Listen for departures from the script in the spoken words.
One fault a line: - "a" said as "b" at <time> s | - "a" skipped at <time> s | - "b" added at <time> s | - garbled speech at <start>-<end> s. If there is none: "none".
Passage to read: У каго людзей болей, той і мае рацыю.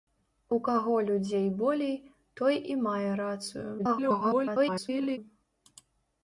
- garbled speech at 3.8-5.2 s